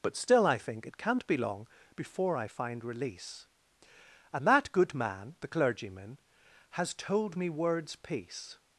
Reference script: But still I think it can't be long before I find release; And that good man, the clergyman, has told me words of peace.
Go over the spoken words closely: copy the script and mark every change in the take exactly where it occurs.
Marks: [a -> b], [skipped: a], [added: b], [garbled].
But still I think it can't be long before I find release; And that good man, the clergyman, has told me words [skipped: of] peace.